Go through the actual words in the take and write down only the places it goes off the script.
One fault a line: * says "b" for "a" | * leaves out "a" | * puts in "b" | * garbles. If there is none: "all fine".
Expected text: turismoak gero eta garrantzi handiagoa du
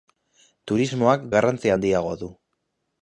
* leaves out "gero eta"